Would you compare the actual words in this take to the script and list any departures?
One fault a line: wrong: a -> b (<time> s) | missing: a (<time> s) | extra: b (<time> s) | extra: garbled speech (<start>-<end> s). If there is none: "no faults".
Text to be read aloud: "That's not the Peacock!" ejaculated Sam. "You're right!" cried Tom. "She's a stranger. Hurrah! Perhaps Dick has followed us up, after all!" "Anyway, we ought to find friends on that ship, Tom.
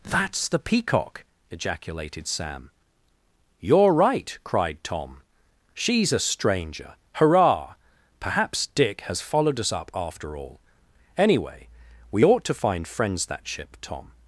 missing: not (0.5 s)
missing: on (13.3 s)